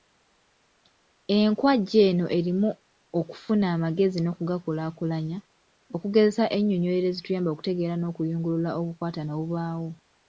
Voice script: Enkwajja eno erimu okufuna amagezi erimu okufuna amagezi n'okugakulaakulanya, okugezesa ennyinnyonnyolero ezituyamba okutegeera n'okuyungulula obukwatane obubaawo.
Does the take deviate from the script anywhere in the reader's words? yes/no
yes